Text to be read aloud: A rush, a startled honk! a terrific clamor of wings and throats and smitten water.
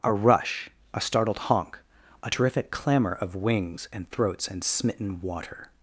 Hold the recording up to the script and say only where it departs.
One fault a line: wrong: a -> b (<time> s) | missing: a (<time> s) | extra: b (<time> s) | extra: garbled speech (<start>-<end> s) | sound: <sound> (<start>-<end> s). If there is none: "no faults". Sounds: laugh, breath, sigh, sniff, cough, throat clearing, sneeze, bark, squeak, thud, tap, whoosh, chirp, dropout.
no faults